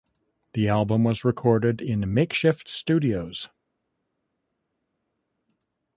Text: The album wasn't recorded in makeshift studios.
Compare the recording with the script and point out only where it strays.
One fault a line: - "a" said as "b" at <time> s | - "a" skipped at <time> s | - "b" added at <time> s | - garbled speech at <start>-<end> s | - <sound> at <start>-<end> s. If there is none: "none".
- "wasn't" said as "was" at 1.0 s